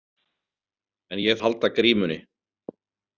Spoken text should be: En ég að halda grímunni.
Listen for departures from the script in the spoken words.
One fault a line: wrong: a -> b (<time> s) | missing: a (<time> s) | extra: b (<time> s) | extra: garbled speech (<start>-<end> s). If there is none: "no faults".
no faults